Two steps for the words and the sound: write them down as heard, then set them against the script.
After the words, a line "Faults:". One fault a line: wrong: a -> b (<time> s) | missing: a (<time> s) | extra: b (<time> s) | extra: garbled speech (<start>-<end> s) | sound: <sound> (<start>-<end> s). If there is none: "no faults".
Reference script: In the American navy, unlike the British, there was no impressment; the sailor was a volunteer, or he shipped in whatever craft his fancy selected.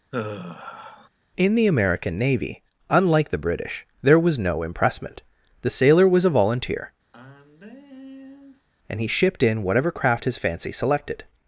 In the American navy, unlike the British, there was no impressment; the sailor was a volunteer, and he shipped in whatever craft his fancy selected.
Faults:
sound: sigh (0.1-1.1 s)
sound: sigh (7.1-8.7 s)
wrong: or -> and (8.9 s)